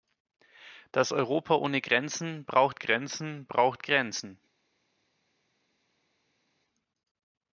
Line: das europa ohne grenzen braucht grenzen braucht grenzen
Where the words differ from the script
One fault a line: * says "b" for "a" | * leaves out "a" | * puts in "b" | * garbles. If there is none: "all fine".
all fine